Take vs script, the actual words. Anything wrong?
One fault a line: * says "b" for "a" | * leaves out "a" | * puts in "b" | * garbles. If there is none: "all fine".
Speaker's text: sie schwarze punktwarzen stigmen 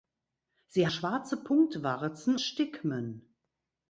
all fine